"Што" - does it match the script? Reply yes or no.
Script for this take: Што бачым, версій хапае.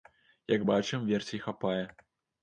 no